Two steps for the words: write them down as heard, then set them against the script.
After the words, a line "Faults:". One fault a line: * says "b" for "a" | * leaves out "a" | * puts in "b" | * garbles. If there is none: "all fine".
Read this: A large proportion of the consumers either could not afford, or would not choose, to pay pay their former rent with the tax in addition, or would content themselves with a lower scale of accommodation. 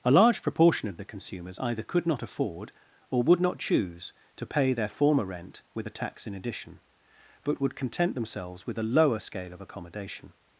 A large proportion of the consumers either could not afford, or would not choose, to pay their former rent with the tax in addition, but would content themselves with a lower scale of accommodation.
Faults:
* leaves out "pay"
* says "but" for "or"